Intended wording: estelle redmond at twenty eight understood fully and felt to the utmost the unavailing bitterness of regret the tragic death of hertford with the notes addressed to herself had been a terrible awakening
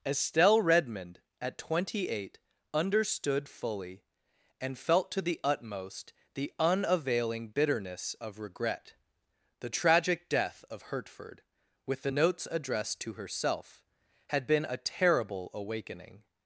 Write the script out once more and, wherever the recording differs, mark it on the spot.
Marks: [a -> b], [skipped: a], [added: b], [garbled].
estelle redmond at twenty eight understood fully and felt to the utmost the unavailing bitterness of regret the tragic death of hertford with the notes addressed to herself had been a terrible awakening